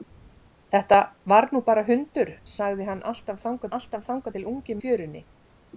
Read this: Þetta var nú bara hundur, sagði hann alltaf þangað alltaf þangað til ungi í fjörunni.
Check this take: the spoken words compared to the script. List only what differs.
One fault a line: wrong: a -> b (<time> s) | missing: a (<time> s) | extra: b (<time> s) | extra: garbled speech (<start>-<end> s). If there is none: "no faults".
no faults